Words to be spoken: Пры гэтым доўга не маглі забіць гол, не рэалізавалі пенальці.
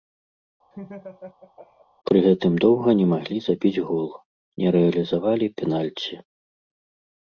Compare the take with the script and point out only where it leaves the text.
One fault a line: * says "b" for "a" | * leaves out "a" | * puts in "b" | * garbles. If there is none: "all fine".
all fine